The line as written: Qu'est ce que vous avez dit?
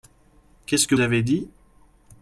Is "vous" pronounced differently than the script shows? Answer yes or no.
yes